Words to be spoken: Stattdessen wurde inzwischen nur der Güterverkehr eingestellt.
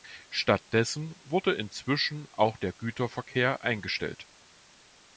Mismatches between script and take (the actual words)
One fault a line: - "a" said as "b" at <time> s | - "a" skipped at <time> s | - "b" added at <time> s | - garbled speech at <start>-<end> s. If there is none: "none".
- "nur" said as "auch" at 2.4 s